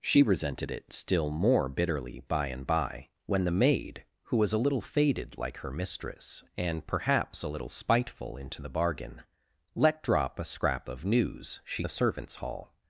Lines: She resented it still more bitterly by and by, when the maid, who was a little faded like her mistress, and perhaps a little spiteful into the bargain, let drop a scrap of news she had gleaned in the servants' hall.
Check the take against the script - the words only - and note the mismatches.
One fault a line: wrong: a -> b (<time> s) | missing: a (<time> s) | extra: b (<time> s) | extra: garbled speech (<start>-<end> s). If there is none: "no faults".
missing: had gleaned in (11.8 s)